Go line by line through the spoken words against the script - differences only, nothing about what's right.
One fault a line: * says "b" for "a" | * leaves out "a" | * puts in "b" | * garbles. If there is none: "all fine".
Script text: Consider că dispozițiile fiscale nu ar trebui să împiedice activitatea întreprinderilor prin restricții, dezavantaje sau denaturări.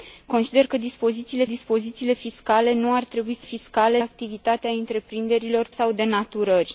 * puts in "dispozițiile"
* says "fiscale" for "împiedice"
* leaves out "prin restricții dezavantaje"